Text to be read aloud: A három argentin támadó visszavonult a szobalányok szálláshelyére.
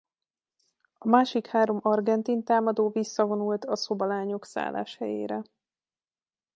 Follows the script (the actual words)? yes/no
no